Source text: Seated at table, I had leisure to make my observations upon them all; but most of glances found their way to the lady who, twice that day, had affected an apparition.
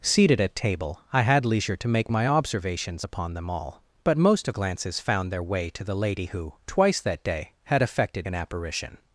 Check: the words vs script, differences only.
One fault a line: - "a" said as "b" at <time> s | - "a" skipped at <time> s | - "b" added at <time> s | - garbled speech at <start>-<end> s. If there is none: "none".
none